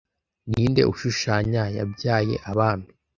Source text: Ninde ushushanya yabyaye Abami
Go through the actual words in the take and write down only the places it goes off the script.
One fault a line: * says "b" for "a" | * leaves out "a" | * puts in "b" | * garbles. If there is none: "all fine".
all fine